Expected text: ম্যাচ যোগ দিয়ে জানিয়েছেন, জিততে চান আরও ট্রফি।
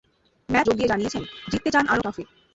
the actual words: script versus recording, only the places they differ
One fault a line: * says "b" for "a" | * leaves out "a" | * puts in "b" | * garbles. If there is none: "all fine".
all fine